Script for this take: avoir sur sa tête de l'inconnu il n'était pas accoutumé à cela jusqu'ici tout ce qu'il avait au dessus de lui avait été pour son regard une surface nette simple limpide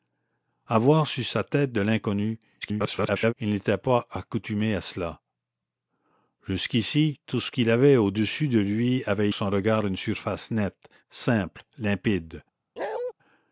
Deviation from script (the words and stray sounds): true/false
true